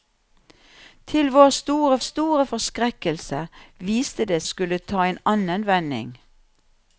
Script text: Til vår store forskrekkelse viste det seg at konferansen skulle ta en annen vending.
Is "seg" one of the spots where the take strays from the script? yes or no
yes